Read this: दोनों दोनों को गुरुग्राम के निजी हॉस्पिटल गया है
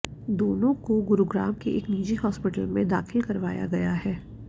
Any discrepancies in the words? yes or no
yes